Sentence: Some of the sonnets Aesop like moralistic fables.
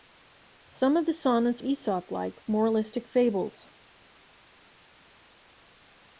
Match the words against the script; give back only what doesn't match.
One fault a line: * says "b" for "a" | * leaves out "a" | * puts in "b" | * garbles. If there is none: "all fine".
all fine